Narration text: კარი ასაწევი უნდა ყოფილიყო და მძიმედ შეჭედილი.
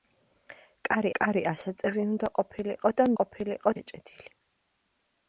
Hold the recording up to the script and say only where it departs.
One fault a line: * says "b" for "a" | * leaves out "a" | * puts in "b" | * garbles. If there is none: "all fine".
* puts in "კარი"
* says "ყოფილიყო" for "მძიმედ"